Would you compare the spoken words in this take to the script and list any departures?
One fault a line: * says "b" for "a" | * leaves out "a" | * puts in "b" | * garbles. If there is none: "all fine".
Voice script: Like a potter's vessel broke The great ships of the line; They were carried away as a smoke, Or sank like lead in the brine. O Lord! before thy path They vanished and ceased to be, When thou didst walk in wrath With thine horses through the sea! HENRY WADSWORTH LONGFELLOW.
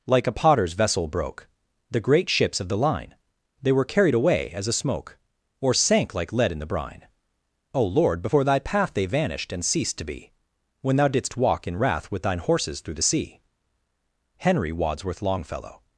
all fine